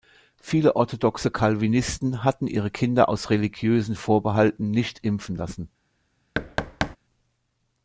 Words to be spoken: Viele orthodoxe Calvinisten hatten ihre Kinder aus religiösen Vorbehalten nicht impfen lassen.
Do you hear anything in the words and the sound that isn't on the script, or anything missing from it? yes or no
yes